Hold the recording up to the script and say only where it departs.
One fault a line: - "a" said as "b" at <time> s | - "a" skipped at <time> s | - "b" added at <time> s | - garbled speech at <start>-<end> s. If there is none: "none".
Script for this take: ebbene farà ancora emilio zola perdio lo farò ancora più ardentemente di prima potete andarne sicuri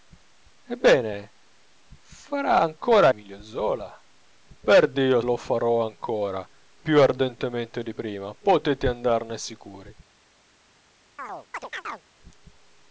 none